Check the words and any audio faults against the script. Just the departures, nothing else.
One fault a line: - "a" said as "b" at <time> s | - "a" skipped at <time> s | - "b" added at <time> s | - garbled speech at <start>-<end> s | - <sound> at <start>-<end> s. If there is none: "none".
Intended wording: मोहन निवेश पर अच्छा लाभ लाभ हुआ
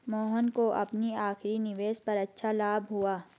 - "को अपनी आखिरी" added at 0.5 s
- "लाभ" skipped at 2.9 s